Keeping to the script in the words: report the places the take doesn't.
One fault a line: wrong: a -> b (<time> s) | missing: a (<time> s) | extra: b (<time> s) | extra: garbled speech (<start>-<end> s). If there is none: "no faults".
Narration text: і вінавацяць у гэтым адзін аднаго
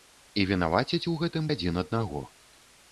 no faults